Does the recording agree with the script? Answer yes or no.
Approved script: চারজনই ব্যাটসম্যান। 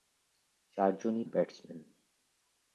yes